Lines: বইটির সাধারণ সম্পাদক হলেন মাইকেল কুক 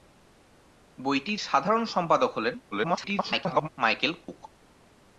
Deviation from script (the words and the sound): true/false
true